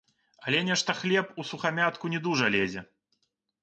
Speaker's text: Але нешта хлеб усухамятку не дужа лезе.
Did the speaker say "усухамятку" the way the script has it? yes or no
yes